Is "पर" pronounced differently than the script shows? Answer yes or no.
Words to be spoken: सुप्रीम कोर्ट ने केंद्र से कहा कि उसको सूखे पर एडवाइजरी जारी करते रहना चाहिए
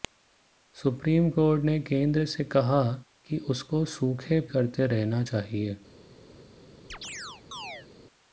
yes